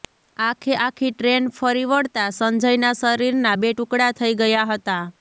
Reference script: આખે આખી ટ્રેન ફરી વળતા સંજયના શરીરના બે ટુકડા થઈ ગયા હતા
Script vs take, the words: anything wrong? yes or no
no